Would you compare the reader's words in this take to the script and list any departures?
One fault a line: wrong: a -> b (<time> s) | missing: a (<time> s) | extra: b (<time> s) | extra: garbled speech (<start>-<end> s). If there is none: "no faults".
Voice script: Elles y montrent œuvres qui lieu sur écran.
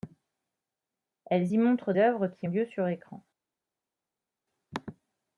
no faults